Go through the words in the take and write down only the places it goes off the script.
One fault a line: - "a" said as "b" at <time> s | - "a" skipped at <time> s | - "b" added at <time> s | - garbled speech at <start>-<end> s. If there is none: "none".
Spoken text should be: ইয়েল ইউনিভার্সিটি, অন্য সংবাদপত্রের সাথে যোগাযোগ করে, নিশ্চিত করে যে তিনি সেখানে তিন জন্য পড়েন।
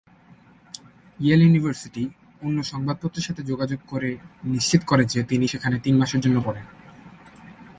- "মাসের" added at 6.0 s